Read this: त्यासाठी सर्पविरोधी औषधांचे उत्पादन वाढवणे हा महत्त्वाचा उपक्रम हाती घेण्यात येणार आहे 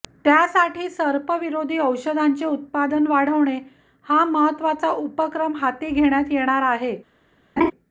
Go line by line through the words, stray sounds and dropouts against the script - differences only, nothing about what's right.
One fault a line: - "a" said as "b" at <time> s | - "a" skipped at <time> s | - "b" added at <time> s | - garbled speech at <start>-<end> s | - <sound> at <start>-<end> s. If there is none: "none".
- laugh at 7.6-7.7 s